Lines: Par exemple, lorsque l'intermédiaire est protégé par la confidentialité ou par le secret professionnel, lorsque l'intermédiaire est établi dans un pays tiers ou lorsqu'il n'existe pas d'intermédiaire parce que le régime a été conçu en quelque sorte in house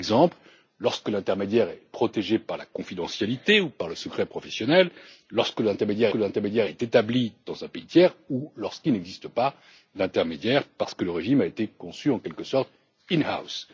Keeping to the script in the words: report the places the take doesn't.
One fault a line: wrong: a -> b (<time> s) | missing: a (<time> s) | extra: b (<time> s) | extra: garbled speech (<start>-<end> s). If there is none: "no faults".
extra: l'intermédiaire (6.1 s)